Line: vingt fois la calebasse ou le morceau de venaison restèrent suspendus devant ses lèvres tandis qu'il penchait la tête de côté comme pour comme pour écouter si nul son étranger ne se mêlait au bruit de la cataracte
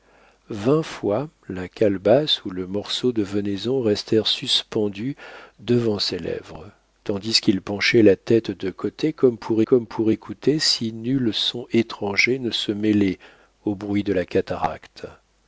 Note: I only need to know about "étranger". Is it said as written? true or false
true